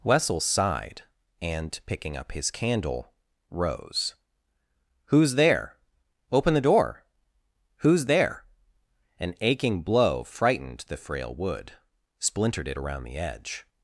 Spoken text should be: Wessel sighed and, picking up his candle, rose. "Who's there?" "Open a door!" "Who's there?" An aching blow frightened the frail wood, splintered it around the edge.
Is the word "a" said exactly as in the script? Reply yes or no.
no